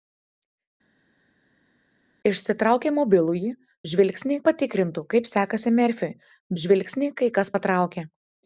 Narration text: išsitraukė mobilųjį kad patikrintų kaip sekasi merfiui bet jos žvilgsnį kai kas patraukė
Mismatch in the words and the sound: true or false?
true